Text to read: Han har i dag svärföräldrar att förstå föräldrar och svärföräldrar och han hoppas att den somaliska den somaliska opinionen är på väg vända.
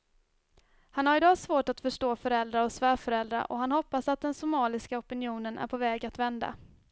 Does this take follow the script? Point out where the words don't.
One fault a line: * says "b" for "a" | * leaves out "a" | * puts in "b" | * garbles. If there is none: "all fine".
* says "svårt" for "svärföräldrar"
* leaves out "den somaliska"
* puts in "att"